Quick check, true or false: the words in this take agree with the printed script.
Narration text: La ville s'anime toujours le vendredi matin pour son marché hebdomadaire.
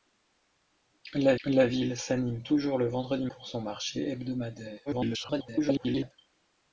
false